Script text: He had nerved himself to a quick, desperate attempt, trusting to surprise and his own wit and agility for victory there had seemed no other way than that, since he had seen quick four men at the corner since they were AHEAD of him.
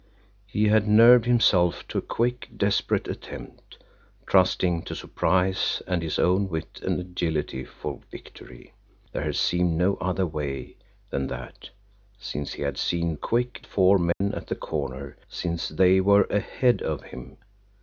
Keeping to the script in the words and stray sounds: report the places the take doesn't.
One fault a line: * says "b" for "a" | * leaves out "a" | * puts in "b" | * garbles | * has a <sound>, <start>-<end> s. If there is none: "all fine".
* has a dropout, 14.1-14.2 s